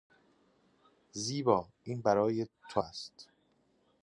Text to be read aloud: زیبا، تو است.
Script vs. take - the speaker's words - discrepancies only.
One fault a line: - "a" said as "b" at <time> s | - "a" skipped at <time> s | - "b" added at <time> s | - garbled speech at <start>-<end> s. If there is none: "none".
- "این برای" added at 1.8 s